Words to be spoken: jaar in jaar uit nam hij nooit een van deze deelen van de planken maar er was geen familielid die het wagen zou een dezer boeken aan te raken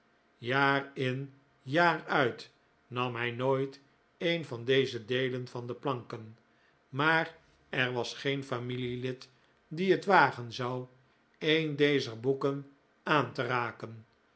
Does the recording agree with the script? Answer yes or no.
yes